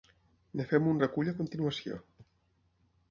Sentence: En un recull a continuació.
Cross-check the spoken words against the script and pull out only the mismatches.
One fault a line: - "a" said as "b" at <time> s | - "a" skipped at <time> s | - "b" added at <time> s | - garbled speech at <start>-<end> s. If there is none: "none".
- "fem" added at 0.7 s